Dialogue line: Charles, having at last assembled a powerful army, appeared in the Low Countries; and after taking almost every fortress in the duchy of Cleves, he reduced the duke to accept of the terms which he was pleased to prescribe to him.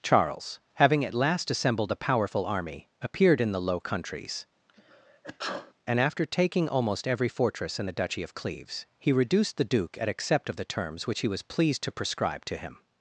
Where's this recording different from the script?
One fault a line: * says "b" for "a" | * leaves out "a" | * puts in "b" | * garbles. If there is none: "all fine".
* says "at" for "to"